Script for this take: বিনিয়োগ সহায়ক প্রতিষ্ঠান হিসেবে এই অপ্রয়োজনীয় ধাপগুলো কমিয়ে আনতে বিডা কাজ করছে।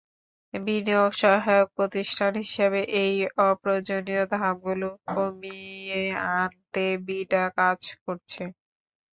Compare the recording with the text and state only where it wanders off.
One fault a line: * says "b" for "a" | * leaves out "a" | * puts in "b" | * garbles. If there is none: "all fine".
all fine